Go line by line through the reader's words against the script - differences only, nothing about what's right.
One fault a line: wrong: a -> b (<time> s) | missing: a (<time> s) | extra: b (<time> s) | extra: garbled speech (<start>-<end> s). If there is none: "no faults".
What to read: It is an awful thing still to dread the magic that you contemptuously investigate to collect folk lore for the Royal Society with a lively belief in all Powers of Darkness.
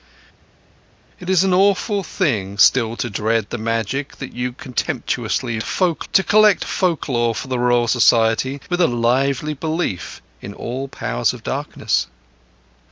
wrong: investigate -> folk (5.6 s)